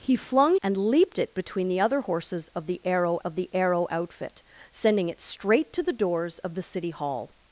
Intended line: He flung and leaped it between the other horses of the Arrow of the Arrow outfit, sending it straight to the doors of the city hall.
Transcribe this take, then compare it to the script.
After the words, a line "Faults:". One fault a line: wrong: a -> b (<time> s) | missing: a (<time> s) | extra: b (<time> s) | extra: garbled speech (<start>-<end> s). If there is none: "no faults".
He flung and leaped it between the other horses of the Arrow of the Arrow outfit, sending it straight to the doors of the city hall.
Faults:
no faults